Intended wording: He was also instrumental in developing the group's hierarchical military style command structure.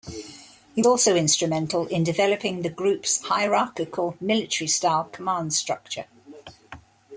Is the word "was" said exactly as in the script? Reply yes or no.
no